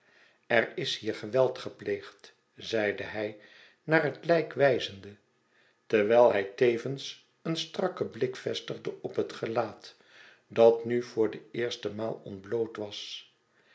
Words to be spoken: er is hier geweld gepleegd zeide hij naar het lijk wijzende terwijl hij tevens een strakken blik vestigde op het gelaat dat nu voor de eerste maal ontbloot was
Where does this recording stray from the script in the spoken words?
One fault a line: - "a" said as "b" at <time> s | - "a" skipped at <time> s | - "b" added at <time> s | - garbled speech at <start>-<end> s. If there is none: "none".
none